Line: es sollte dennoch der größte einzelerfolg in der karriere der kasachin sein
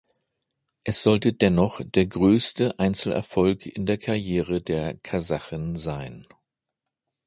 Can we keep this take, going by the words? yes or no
yes